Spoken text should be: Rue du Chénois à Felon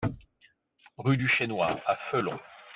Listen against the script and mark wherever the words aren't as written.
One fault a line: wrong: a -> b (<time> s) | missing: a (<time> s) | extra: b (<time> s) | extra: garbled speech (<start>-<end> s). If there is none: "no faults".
no faults